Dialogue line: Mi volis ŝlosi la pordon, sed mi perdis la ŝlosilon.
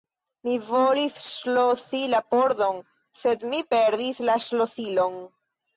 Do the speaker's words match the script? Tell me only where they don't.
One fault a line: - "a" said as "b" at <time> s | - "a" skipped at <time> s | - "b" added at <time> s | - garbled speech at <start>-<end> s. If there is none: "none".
none